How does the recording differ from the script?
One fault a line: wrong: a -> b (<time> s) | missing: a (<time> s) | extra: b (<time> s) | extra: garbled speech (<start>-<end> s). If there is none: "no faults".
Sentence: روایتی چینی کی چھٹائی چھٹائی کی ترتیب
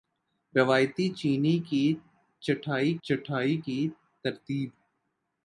no faults